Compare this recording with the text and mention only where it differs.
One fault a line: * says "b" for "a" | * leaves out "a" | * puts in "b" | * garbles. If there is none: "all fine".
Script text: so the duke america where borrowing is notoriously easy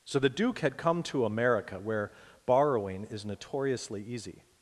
* puts in "had come to"